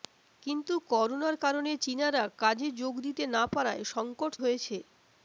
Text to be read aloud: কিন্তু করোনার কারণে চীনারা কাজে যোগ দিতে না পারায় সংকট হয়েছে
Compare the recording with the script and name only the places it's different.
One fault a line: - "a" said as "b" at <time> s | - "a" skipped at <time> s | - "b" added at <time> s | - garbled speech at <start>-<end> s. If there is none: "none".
none